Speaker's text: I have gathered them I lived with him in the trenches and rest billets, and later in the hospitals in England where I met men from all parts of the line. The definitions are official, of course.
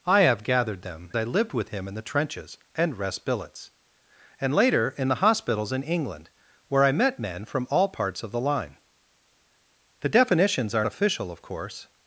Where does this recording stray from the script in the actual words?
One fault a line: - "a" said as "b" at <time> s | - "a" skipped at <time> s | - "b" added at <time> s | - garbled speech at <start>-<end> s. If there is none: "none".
none